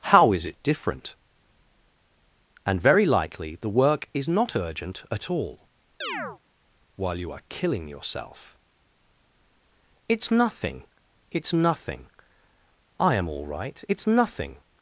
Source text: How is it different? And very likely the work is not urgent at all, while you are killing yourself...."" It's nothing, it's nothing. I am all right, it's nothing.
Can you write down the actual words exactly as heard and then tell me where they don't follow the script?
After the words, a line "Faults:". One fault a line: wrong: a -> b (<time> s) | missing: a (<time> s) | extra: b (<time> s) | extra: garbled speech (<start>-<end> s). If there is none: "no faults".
How is it different? And very likely the work is not urgent at all, while you are killing yourself...."" It's nothing, it's nothing. I am all right, it's nothing.
Faults:
no faults